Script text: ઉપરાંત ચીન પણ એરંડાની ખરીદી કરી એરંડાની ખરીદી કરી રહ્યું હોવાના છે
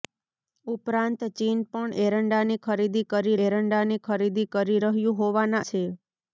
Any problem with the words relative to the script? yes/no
no